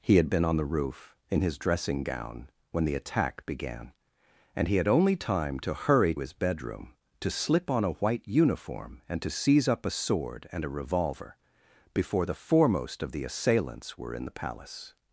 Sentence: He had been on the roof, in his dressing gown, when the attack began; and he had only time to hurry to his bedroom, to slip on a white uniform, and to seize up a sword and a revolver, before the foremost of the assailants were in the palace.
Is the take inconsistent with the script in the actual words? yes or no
yes